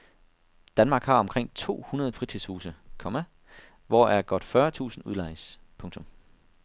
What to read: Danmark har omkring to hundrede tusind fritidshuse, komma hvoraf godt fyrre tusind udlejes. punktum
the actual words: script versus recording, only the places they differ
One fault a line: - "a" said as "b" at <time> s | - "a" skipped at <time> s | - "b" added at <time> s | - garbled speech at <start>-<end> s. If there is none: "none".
- "tusind" skipped at 2.1 s